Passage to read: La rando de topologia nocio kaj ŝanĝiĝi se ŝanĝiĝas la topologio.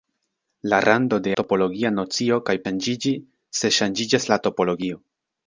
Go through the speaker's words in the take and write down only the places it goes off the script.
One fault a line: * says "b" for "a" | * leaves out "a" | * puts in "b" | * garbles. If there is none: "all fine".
all fine